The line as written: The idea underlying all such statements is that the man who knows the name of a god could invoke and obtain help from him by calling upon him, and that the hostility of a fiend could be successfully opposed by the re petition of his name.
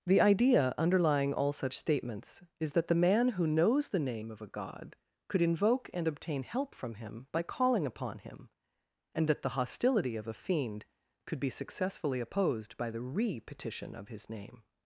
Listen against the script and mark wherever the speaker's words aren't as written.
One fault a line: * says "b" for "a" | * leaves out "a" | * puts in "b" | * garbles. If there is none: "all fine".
all fine